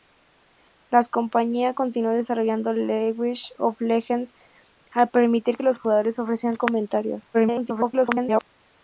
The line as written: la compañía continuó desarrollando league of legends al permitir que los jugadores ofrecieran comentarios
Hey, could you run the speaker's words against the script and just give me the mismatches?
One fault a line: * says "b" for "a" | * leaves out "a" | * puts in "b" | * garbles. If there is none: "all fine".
* leaves out "que"
* garbles